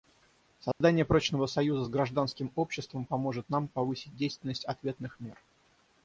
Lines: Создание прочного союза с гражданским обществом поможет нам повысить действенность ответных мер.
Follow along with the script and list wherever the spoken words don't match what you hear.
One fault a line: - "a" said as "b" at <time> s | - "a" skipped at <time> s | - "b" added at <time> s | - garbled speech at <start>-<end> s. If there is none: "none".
none